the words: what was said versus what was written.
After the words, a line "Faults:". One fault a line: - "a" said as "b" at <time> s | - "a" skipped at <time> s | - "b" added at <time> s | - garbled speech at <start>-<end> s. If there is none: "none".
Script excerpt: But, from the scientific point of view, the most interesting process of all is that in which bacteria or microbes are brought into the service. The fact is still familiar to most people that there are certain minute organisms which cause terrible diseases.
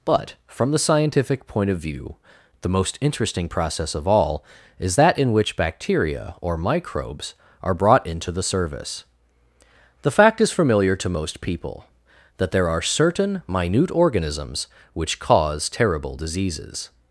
But, from the scientific point of view, the most interesting process of all is that in which bacteria or microbes are brought into the service. The fact is familiar to most people that there are certain minute organisms which cause terrible diseases.
Faults:
- "still" skipped at 10.5 s